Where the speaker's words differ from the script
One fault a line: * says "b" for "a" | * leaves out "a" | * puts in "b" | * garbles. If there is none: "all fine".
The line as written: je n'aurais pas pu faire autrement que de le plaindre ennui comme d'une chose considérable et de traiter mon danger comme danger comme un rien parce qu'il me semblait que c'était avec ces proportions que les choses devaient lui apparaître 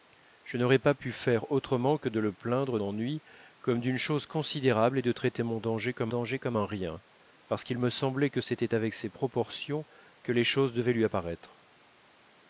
all fine